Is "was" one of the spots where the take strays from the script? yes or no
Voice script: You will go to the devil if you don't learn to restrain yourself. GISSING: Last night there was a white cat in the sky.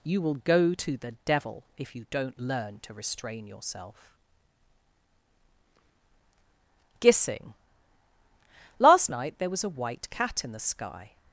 no